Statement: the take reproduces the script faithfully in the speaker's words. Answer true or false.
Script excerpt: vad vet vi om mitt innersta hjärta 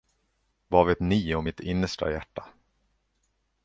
false